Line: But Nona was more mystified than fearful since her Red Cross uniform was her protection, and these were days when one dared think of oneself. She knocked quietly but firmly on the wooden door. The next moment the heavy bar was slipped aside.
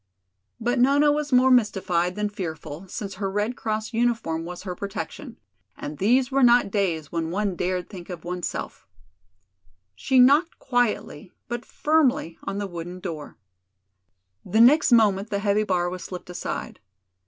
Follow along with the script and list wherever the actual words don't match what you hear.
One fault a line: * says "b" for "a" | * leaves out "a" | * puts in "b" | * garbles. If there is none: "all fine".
* puts in "not"